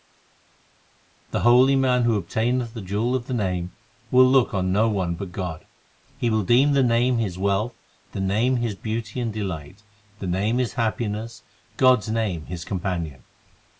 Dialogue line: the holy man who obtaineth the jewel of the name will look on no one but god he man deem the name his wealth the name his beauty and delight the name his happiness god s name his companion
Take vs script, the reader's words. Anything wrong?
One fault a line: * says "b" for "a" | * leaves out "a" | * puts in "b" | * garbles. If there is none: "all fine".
* says "will" for "man"